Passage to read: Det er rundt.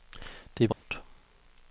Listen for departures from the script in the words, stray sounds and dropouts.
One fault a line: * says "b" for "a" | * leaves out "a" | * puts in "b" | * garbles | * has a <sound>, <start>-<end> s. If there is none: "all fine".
* has a dropout, 0.7-0.8 s